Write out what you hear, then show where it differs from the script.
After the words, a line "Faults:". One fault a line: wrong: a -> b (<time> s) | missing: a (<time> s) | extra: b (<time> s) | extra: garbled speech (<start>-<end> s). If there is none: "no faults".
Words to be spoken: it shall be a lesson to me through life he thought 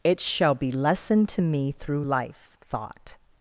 it shall be lesson to me through life thought
Faults:
missing: a (0.7 s)
missing: he (2.5 s)